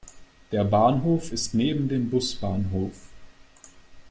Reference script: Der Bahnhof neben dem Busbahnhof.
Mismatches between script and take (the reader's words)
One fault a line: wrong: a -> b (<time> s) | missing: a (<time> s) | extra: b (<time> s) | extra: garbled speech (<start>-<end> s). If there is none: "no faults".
extra: ist (1.3 s)